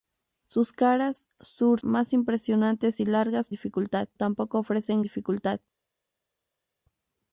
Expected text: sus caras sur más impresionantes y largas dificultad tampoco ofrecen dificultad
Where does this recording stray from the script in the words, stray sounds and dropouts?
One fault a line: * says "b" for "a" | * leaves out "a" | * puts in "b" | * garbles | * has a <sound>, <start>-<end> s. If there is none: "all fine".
all fine